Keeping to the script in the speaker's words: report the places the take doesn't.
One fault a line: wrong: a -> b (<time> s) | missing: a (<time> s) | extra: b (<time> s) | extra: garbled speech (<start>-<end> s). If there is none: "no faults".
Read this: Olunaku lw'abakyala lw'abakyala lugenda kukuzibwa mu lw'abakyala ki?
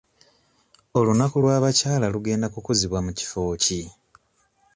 missing: lw'abakyala (2.1 s)
wrong: lw'abakyala -> kifo (3.2 s)